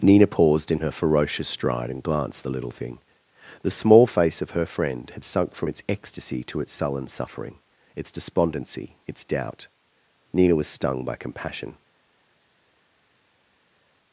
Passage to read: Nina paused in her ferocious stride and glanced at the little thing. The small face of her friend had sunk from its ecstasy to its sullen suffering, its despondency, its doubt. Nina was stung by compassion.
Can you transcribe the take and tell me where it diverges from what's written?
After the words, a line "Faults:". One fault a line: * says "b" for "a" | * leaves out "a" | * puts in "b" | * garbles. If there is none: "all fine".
Nina paused in her ferocious stride and glanced the little thing. The small face of her friend had sunk from its ecstasy to its sullen suffering, its despondency, its doubt. Nina was stung by compassion.
Faults:
* leaves out "at"